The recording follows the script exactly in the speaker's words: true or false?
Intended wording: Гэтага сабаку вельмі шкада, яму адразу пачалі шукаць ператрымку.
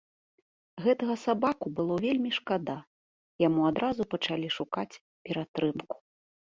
false